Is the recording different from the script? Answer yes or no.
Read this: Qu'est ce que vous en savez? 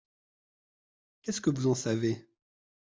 no